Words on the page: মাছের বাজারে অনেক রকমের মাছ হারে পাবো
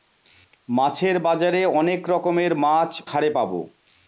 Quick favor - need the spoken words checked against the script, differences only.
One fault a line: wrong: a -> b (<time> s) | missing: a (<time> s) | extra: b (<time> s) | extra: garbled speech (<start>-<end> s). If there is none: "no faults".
no faults